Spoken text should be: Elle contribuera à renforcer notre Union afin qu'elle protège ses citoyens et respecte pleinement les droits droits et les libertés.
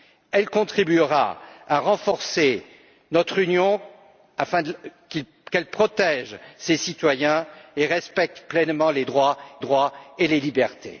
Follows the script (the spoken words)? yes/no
yes